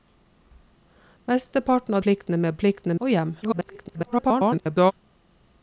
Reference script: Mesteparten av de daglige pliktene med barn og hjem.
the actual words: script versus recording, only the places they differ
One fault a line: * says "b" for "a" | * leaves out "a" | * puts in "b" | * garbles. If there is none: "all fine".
* leaves out "de daglige"
* says "pliktene" for "barn"
* garbles